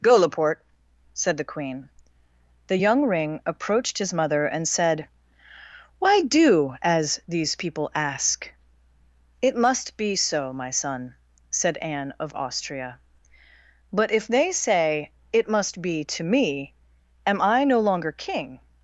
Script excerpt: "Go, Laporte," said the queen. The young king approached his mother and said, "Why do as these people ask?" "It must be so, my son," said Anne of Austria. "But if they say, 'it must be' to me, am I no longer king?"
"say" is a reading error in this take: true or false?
false